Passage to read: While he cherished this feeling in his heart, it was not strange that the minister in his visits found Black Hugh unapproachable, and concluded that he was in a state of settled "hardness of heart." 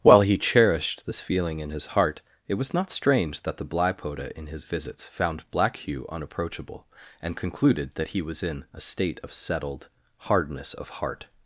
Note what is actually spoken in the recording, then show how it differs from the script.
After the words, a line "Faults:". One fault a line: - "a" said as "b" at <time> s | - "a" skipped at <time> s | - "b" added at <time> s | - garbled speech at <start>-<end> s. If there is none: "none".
While he cherished this feeling in his heart, it was not strange that the blypoda in his visits found Black Hugh unapproachable, and concluded that he was in a state of settled "hardness of heart."
Faults:
- "minister" said as "blypoda" at 3.6 s